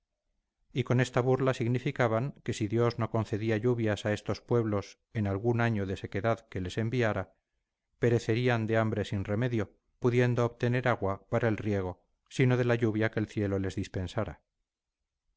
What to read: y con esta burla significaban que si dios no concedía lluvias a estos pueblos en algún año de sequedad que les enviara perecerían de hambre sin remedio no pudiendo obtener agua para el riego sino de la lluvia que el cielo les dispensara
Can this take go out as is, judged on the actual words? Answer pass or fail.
fail